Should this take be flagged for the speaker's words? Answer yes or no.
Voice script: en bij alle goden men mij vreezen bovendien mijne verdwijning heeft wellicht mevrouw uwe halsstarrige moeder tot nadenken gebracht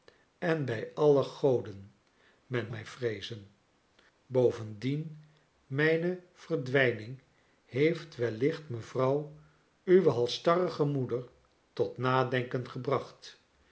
no